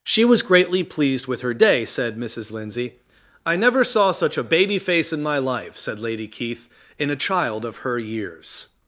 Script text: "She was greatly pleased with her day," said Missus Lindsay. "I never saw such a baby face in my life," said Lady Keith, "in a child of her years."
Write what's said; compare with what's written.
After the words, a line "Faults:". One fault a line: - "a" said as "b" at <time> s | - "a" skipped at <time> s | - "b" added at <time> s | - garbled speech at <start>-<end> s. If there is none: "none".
"She was greatly pleased with her day," said Missus Lindsay. "I never saw such a baby face in my life," said Lady Keith, "in a child of her years."
Faults:
none